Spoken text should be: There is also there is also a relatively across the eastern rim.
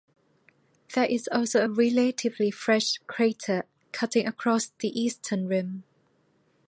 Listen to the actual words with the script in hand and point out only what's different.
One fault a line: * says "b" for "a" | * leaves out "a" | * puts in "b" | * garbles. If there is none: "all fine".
* says "a relatively fresh crater cutting" for "there is also a relatively"